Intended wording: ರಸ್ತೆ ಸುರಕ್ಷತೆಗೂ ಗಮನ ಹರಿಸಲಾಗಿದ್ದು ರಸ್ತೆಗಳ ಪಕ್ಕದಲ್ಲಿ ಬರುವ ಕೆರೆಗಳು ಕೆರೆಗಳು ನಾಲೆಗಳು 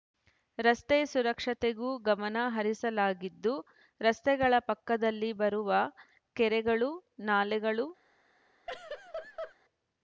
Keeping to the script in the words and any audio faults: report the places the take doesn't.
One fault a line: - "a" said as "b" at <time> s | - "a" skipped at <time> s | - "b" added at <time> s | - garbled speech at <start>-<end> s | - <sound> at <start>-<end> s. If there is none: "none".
- "ಕೆರೆಗಳು" skipped at 6.9 s
- laugh at 8.7-9.6 s